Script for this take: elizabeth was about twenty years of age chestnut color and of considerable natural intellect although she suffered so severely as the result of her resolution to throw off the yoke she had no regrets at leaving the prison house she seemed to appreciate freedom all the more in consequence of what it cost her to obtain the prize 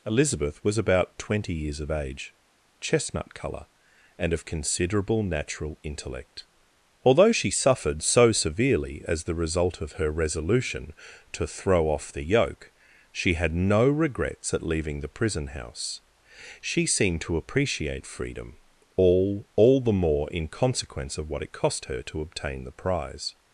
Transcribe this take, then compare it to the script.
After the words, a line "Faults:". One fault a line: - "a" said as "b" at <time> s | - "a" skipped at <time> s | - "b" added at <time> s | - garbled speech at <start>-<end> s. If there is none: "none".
elizabeth was about twenty years of age chestnut color and of considerable natural intellect although she suffered so severely as the result of her resolution to throw off the yoke she had no regrets at leaving the prison house she seemed to appreciate freedom all all the more in consequence of what it cost her to obtain the prize
Faults:
- "all" added at 19.5 s